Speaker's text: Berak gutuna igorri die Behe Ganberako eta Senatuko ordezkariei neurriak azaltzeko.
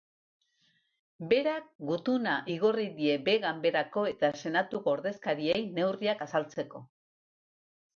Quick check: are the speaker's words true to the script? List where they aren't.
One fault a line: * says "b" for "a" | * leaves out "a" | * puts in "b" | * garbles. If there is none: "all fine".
all fine